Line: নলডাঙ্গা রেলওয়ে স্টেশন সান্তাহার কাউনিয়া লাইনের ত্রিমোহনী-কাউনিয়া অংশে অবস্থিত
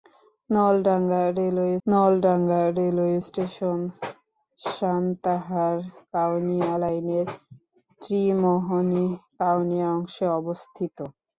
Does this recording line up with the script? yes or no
no